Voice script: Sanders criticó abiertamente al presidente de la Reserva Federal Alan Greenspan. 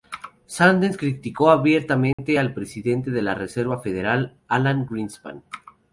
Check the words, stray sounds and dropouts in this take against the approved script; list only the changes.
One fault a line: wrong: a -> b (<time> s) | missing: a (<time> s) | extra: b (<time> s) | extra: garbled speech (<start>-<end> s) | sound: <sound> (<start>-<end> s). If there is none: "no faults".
sound: dropout (2.1-2.2 s)